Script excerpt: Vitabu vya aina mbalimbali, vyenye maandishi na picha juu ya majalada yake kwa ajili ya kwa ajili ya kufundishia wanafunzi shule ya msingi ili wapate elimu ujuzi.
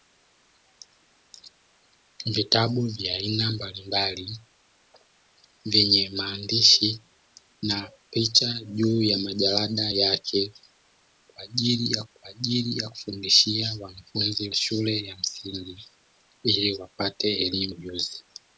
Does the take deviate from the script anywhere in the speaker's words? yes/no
no